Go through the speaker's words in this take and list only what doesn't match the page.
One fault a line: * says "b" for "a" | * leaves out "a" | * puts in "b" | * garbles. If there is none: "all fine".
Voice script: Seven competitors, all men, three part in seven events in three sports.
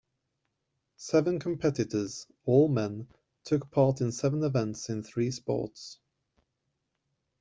* says "took" for "three"